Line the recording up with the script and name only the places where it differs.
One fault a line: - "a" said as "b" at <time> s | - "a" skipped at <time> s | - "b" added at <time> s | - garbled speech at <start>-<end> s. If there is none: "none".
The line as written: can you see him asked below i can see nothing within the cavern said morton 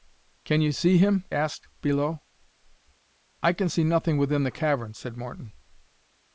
none